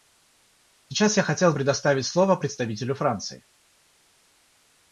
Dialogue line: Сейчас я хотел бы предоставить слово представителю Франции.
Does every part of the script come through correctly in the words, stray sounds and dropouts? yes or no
no